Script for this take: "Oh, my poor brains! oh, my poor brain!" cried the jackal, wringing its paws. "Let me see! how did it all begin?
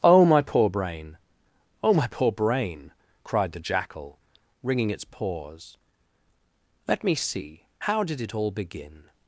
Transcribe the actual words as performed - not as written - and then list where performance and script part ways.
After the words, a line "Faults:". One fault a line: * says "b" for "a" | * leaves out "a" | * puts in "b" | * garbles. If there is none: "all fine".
"Oh, my poor brain! oh, my poor brain!" cried the jackal, wringing its paws. "Let me see! how did it all begin?
Faults:
* says "brain" for "brains"